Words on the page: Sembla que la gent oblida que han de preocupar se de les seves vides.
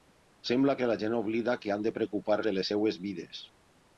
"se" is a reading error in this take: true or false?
true